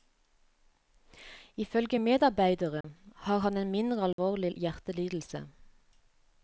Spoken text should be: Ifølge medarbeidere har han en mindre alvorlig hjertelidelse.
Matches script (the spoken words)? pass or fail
pass